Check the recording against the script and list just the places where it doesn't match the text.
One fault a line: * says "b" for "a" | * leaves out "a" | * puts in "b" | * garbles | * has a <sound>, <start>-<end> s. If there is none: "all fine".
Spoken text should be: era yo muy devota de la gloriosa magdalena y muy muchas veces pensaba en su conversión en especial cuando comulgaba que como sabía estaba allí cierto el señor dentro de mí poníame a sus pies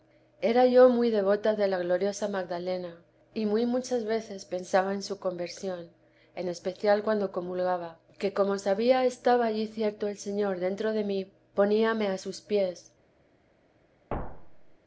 * has a thud, 14.1-14.8 s